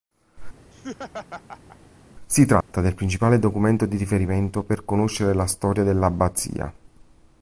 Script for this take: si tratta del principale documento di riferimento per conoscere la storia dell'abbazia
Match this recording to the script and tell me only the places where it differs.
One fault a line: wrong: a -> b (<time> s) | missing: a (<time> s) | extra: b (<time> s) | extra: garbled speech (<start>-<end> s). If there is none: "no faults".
no faults